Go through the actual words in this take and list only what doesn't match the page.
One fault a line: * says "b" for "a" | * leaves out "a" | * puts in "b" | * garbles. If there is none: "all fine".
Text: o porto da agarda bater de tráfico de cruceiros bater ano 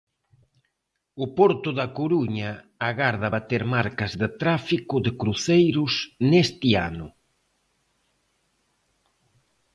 * puts in "coruña"
* puts in "marcas"
* says "neste" for "bater"